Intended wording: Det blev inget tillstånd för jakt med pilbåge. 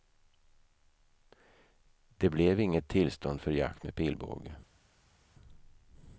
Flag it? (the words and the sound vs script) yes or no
no